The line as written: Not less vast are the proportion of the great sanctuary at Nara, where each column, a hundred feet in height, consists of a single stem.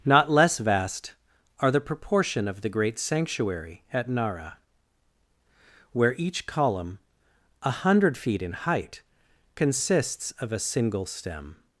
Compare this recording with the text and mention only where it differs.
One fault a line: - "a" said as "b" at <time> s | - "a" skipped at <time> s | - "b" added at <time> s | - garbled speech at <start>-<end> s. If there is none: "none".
none